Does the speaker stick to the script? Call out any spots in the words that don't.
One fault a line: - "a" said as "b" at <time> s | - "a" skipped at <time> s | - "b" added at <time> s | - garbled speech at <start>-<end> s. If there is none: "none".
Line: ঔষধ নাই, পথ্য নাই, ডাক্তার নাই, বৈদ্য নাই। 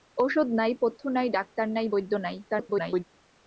- garbled speech at 2.4-3.0 s